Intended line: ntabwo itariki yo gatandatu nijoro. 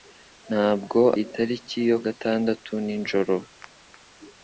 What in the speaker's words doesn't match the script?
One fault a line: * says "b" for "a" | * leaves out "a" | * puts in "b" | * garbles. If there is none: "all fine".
all fine